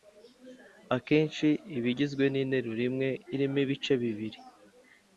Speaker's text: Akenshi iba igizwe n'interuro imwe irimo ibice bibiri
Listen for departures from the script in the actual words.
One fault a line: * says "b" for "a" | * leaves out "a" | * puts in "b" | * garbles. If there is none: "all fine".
all fine